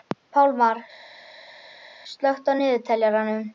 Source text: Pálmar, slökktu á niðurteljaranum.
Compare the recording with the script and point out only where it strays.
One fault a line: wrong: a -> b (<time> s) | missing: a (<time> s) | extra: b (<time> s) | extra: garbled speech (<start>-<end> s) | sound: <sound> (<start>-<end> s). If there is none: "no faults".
no faults